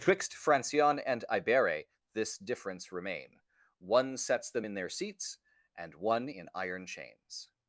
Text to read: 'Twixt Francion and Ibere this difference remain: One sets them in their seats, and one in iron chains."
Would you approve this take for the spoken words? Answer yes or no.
yes